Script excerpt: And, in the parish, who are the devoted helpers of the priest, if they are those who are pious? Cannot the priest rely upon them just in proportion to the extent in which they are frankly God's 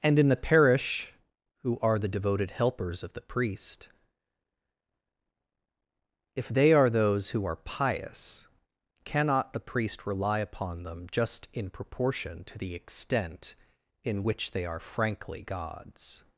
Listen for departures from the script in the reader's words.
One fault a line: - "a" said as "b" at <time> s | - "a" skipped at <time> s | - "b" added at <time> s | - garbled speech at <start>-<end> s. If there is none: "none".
none